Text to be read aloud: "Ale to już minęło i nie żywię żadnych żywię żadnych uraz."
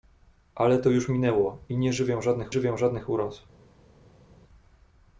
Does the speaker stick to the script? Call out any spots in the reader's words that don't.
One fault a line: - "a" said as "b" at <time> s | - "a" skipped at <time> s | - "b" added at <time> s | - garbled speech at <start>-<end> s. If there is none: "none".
none